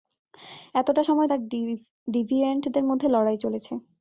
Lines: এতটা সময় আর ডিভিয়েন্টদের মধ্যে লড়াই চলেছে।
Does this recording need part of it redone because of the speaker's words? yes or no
no